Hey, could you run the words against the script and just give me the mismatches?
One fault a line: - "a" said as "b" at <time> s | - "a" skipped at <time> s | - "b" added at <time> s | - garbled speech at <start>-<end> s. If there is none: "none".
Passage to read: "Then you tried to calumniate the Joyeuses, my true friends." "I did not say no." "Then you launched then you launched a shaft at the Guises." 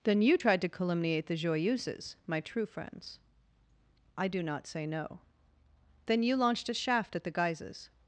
- "did" said as "do" at 4.3 s
- "then you launched" skipped at 6.7 s